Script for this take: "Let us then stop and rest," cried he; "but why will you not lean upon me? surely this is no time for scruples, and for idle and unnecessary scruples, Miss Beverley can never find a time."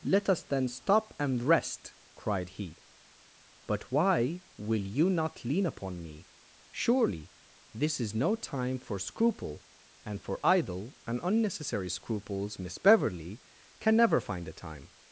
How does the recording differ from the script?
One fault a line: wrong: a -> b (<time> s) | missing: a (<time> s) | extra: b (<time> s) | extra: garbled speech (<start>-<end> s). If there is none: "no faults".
wrong: scruples -> scruple (9.0 s)